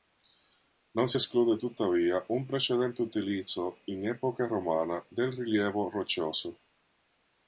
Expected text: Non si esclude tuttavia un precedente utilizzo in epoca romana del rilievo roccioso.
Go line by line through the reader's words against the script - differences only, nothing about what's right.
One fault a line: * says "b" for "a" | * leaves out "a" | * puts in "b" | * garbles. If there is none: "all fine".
all fine